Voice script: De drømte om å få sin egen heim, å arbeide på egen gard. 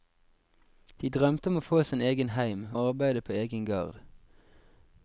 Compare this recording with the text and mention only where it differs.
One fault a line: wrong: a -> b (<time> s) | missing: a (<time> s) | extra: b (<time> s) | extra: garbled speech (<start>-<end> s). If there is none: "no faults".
no faults